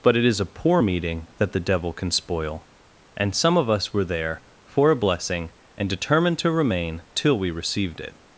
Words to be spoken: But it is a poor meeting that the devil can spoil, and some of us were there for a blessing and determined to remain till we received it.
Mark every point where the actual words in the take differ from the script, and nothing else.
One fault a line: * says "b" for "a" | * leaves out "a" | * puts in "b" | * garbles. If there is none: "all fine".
all fine